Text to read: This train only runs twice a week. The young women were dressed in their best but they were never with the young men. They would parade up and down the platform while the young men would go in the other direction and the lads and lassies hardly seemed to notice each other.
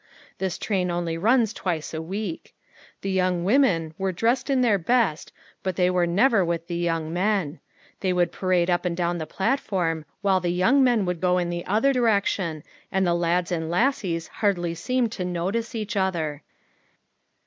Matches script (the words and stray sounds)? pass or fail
pass